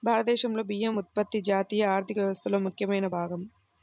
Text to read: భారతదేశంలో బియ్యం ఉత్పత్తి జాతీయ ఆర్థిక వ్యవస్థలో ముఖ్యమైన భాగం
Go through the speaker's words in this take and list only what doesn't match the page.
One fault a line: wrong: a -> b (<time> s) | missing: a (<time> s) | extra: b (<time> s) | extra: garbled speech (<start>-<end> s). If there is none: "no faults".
no faults